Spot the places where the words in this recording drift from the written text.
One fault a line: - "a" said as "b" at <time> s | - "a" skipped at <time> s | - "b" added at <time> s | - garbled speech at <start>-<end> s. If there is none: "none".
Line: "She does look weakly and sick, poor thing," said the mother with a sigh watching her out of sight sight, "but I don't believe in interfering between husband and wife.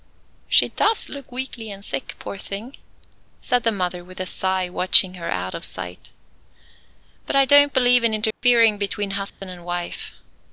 - "sight" skipped at 6.1 s